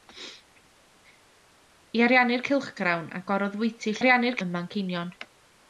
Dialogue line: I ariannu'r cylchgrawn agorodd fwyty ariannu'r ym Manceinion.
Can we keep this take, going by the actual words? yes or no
yes